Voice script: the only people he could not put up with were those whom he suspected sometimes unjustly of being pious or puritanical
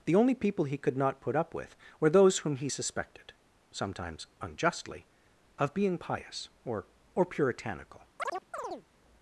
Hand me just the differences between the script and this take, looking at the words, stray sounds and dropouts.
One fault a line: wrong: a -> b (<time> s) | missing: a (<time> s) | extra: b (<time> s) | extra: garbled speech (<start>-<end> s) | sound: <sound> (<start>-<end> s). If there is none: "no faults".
extra: or (7.1 s)
sound: chirp (8.2-8.9 s)